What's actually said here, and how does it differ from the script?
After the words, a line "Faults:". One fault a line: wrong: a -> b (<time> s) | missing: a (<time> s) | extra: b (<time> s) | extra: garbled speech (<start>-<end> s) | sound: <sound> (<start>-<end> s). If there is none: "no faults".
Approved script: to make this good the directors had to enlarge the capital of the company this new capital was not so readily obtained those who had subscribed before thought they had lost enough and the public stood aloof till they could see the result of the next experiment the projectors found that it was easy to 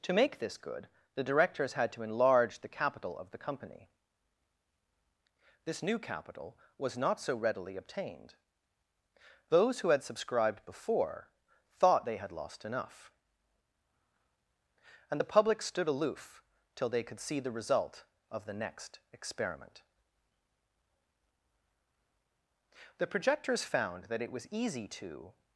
to make this good the directors had to enlarge the capital of the company this new capital was not so readily obtained those who had subscribed before thought they had lost enough and the public stood aloof till they could see the result of the next experiment the projectors found that it was easy to
Faults:
no faults